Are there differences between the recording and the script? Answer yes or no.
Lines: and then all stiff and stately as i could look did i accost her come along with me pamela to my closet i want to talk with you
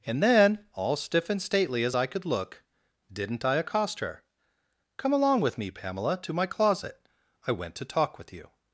yes